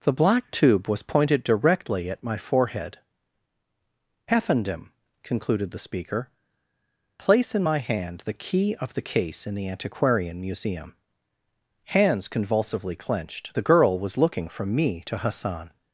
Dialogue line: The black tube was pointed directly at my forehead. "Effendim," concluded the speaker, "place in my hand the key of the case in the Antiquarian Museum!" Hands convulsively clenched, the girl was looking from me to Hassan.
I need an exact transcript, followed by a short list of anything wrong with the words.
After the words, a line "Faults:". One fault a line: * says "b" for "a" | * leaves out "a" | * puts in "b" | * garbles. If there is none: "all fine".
The black tube was pointed directly at my forehead. "Effendim," concluded the speaker, "place in my hand the key of the case in the Antiquarian Museum!" Hands convulsively clenched, the girl was looking from me to Hassan.
Faults:
all fine